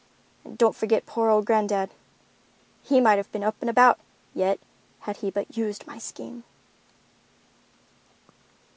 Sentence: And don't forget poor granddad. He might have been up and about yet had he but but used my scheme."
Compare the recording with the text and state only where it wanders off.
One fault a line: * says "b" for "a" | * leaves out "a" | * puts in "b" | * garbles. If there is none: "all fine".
* puts in "old"
* leaves out "but"